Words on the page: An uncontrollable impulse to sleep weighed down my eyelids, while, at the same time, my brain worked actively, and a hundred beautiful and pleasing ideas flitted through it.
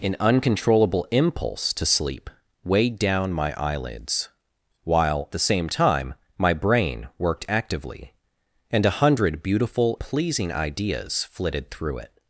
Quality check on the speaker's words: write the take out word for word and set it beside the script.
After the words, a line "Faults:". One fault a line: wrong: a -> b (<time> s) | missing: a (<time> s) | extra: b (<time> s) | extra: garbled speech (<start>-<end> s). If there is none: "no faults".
An uncontrollable impulse to sleep weighed down my eyelids, while, the same time, my brain worked actively, and a hundred beautiful pleasing ideas flitted through it.
Faults:
missing: at (5.3 s)
missing: and (10.0 s)